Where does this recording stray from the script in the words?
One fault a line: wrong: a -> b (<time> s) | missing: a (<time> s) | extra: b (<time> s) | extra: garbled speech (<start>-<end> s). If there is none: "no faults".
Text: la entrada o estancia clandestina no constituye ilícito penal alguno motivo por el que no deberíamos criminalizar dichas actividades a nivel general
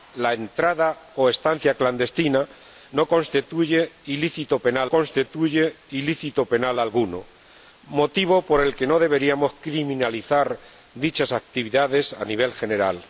extra: constituye ilícito penal (4.9 s)